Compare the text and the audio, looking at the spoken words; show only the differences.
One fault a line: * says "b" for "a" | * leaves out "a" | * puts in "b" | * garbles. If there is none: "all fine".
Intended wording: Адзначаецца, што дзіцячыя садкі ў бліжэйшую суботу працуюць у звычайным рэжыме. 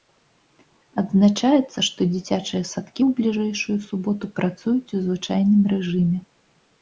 all fine